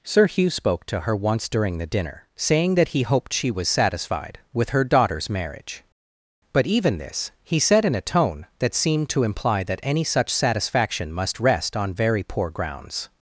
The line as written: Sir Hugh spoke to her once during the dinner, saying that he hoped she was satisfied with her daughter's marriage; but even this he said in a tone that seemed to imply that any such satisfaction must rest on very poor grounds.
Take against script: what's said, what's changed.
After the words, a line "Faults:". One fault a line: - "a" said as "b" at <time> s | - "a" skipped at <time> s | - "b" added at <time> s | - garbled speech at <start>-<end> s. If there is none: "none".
Sir Hugh spoke to her once during the dinner, saying that he hoped she was satisfied with her daughter's marriage; but even this he said in a tone that seemed to imply that any such satisfaction must rest on very poor grounds.
Faults:
none